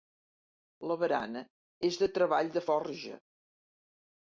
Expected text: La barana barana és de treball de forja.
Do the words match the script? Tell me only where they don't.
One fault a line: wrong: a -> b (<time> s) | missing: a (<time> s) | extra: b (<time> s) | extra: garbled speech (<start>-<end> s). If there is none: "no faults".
missing: barana (1.4 s)